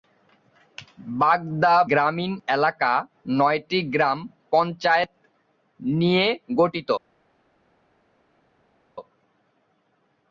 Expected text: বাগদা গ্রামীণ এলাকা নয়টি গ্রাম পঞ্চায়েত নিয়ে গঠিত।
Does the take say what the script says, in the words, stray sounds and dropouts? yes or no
yes